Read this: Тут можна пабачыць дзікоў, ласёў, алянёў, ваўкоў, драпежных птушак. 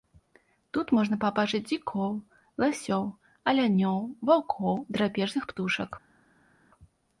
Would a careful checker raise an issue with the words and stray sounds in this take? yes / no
no